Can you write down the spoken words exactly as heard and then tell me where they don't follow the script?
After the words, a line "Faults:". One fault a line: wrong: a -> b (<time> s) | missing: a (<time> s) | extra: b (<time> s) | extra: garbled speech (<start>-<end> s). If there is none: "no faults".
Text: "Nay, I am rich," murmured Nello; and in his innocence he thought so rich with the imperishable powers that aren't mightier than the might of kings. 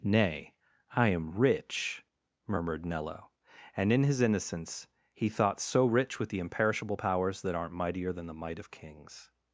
"Nay, I am rich," murmured Nello; and in his innocence he thought so rich with the imperishable powers that aren't mightier than the might of kings.
Faults:
no faults